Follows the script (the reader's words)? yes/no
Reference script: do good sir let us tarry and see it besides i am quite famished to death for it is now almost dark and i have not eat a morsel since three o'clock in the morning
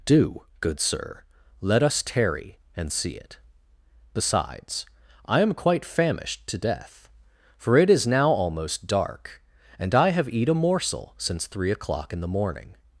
no